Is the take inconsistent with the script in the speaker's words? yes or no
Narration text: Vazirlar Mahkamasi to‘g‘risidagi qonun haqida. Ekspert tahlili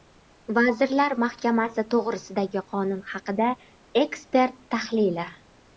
no